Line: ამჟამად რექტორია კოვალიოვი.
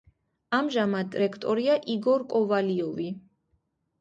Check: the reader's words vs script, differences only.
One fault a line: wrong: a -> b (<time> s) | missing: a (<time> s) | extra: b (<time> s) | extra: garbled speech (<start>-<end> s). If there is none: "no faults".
extra: იგორ (2.0 s)